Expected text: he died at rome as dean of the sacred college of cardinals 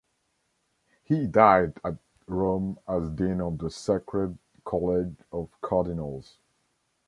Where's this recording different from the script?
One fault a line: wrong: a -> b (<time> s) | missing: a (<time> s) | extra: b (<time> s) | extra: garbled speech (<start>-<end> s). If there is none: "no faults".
no faults